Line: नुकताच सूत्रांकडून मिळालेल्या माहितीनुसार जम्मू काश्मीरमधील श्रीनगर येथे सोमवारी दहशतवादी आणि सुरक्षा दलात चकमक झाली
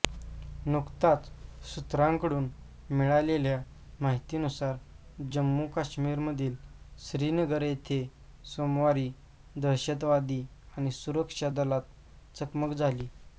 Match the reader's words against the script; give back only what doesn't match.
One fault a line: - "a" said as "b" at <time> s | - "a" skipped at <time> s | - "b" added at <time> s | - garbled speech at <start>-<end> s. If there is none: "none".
none